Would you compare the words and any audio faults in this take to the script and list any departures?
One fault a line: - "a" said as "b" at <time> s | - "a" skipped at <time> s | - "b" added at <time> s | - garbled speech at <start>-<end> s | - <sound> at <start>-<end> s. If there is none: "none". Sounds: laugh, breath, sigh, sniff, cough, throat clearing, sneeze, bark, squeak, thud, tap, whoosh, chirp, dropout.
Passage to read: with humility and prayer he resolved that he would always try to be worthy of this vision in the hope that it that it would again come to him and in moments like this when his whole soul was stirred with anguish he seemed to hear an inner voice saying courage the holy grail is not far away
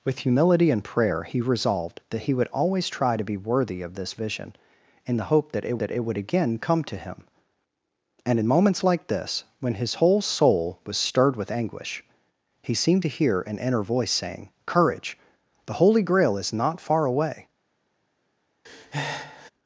- breath at 18.6-19.5 s